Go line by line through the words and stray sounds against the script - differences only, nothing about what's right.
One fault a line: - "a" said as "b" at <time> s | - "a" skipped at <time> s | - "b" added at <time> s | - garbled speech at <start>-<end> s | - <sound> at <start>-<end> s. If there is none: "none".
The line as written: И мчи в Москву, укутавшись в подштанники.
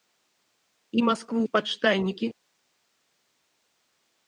- "мчи" skipped at 1.0 s
- "укутавшись" skipped at 1.4 s